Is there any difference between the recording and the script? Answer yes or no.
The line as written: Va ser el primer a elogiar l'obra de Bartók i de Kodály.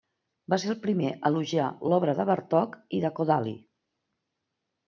no